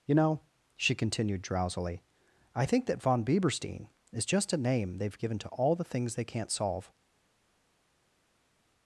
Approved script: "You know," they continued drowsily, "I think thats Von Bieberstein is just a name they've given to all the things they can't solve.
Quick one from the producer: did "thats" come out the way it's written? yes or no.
no